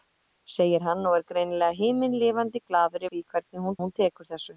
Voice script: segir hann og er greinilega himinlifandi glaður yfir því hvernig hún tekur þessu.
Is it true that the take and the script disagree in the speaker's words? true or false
true